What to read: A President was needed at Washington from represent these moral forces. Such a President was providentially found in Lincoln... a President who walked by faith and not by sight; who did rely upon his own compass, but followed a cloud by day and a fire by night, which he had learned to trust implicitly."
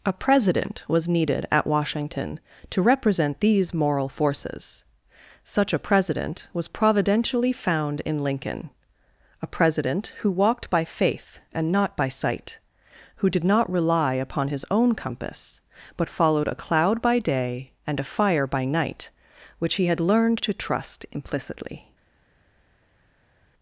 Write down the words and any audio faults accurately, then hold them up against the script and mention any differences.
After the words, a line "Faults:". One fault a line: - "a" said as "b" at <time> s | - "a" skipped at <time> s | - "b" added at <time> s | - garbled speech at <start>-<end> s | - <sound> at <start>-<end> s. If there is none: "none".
A President was needed at Washington to represent these moral forces. Such a President was providentially found in Lincoln... a President who walked by faith and not by sight; who did not rely upon his own compass, but followed a cloud by day and a fire by night, which he had learned to trust implicitly."
Faults:
- "from" said as "to" at 2.7 s
- "not" added at 13.4 s